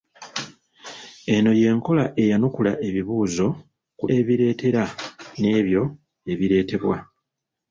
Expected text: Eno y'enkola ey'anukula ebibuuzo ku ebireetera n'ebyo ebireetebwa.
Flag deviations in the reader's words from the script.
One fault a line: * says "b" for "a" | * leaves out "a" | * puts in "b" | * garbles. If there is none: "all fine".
all fine